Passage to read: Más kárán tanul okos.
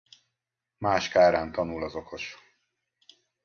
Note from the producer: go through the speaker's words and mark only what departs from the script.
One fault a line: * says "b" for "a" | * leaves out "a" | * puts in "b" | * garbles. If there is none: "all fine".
* puts in "az"